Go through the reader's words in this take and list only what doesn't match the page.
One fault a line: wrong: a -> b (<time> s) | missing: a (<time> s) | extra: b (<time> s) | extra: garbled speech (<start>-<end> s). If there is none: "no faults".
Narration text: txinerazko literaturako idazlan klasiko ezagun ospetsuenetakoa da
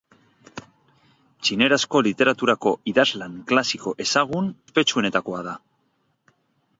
no faults